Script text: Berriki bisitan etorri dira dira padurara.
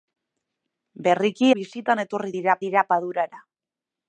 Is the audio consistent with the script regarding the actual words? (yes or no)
yes